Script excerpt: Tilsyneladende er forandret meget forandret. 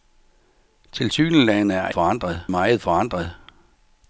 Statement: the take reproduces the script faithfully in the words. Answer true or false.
true